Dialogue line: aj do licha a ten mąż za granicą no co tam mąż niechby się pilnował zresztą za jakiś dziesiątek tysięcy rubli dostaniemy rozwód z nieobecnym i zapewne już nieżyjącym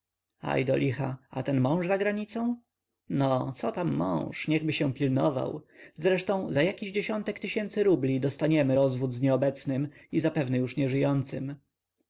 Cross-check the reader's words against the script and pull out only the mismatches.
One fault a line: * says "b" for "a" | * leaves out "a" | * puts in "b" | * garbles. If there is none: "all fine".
all fine